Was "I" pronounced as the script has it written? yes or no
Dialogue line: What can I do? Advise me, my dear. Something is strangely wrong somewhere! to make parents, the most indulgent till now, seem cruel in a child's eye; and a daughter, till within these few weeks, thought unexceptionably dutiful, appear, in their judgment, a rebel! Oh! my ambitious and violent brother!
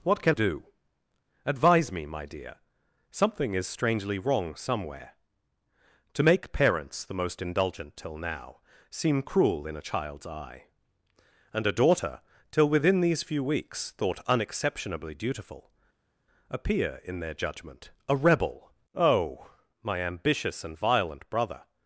no